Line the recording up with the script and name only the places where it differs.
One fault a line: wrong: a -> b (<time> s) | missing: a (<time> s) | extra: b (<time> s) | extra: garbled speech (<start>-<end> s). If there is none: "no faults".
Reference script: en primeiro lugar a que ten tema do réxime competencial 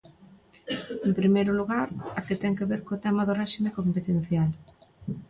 extra: que ver co (2.6 s)